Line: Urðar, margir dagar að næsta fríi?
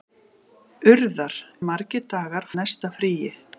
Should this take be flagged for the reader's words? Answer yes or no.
no